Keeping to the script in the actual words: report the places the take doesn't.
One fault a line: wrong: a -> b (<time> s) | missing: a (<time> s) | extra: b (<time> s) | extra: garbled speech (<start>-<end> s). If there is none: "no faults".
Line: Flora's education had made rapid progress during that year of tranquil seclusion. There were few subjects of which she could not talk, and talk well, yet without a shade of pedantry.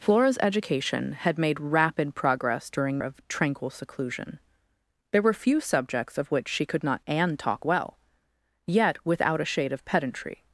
missing: that year (3.0 s)
missing: talk (7.0 s)